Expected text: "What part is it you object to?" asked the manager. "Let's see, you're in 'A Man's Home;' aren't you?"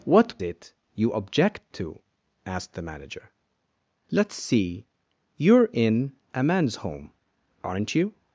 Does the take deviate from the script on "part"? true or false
true